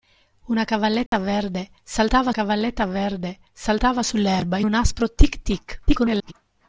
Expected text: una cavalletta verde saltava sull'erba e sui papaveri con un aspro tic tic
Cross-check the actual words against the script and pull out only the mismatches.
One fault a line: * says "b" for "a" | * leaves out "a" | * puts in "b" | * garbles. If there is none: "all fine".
* says "cavalletta verde saltava sull'erba e" for "sull'erba e sui papaveri con"
* garbles